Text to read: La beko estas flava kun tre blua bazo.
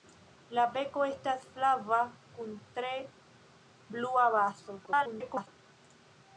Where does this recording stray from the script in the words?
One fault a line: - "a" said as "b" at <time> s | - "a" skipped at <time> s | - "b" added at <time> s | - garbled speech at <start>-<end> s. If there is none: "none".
- garbled speech at 4.9-5.5 s